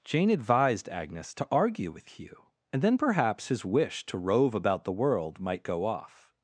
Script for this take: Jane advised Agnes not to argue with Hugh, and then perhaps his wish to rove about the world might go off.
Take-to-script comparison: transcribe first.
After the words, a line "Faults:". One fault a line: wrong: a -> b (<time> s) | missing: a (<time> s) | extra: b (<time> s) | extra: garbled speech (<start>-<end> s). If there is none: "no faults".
Jane advised Agnes to argue with Hugh, and then perhaps his wish to rove about the world might go off.
Faults:
missing: not (1.3 s)